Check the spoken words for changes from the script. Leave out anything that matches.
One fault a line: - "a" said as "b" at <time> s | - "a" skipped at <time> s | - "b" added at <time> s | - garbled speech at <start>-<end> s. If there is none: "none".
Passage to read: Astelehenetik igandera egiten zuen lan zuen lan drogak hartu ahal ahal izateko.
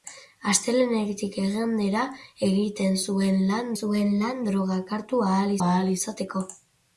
none